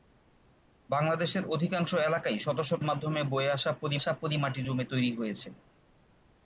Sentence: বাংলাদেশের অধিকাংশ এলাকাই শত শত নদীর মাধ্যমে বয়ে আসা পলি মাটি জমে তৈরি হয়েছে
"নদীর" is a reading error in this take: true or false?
true